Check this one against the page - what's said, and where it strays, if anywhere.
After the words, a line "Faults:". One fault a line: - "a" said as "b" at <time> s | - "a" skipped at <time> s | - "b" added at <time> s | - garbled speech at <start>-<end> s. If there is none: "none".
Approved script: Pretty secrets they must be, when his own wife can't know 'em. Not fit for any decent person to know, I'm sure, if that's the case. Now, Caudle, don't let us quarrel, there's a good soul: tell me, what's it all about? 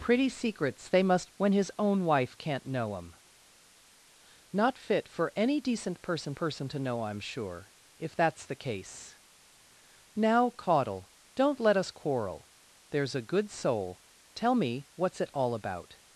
Pretty secrets they must when his own wife can't know 'em. Not fit for any decent person person to know, I'm sure, if that's the case. Now, Caudle, don't let us quarrel, there's a good soul: tell me, what's it all about?
Faults:
- "be" skipped at 1.3 s
- "person" added at 6.3 s